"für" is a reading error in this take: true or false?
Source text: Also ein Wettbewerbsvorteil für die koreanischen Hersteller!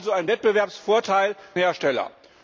true